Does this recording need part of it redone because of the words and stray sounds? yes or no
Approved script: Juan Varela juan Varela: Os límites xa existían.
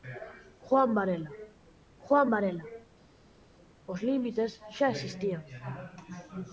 no